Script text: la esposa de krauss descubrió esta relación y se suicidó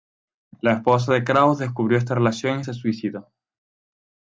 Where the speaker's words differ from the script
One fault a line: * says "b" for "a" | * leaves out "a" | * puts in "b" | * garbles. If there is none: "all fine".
all fine